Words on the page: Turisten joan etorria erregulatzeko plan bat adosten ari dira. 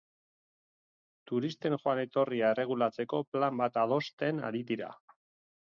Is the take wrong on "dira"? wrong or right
right